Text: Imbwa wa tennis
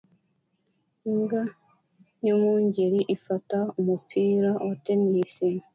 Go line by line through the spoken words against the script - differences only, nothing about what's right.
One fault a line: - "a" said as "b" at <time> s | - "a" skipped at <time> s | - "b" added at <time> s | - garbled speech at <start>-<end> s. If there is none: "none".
- "yumwungeri ifata umupira" added at 2.2 s